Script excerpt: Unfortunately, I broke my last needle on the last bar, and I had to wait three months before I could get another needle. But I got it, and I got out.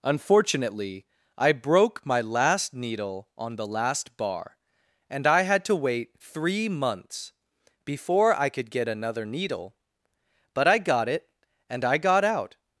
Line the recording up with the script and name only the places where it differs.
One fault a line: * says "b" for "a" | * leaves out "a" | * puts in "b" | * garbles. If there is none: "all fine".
all fine